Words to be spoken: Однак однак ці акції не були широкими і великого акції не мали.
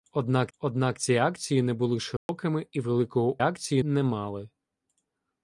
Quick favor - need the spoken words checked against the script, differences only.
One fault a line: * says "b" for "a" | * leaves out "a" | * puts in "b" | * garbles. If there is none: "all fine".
all fine